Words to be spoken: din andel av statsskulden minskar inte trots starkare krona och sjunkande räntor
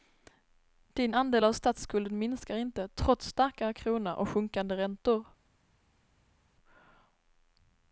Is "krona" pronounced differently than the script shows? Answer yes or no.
no